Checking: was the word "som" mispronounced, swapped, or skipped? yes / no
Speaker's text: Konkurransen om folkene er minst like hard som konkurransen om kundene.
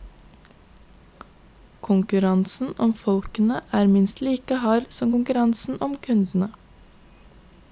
no